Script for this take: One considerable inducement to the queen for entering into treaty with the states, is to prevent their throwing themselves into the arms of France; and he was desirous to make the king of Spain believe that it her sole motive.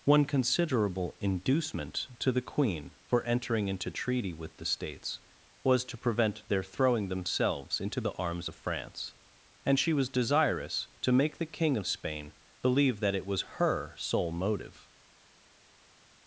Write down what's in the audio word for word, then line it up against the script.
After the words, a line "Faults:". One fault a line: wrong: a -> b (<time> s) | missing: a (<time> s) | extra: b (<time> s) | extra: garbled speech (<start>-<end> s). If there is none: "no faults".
One considerable inducement to the queen for entering into treaty with the states, was to prevent their throwing themselves into the arms of France; and she was desirous to make the king of Spain believe that it was her sole motive.
Faults:
wrong: is -> was (5.6 s)
wrong: he -> she (9.8 s)
extra: was (13.3 s)